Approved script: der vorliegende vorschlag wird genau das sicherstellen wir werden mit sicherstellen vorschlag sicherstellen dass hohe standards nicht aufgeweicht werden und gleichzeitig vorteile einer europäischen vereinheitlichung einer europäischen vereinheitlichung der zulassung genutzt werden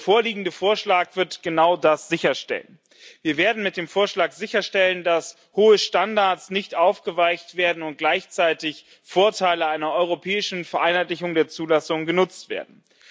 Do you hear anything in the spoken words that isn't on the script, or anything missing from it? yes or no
yes